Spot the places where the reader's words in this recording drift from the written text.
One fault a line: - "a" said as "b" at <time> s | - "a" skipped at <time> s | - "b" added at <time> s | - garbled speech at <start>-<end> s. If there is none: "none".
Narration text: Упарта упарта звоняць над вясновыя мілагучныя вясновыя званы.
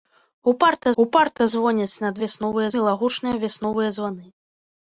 none